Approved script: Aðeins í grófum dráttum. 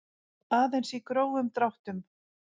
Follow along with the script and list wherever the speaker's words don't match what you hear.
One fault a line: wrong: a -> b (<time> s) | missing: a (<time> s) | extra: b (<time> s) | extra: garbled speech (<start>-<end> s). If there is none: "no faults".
no faults